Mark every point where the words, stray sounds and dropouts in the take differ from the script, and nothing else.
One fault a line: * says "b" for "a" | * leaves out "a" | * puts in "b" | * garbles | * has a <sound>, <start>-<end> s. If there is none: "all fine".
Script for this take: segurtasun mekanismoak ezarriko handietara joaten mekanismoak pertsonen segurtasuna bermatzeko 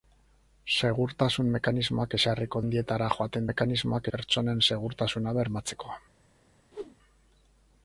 * has a whoosh, 6.7-7.0 s